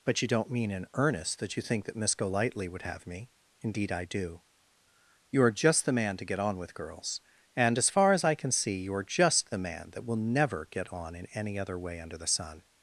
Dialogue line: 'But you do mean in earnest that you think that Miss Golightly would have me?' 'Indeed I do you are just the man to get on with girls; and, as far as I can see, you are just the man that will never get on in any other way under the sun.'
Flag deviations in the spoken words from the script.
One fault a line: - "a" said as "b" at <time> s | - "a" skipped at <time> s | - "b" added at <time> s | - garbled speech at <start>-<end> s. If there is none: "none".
- "do" said as "don't" at 0.3 s